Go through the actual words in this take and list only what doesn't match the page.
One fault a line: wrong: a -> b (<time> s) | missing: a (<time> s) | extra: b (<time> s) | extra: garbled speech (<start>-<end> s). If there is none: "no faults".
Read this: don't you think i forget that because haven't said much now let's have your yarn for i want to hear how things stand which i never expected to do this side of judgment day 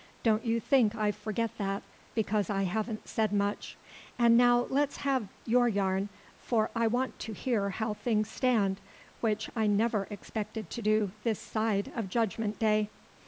extra: i (2.5 s)
extra: and (4.2 s)